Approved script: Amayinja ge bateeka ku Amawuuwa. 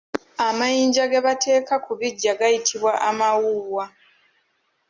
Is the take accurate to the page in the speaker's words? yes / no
no